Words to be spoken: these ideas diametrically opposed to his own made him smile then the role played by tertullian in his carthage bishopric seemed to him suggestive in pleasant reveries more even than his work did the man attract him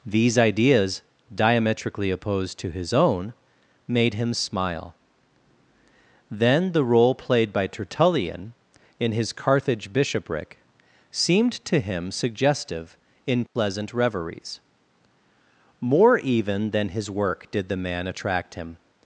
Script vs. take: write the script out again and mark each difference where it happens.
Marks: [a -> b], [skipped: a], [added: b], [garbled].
these ideas diametrically opposed to his own made him smile then the role played by tertullian in his carthage bishopric seemed to him suggestive in pleasant reveries more even than his work did the man attract him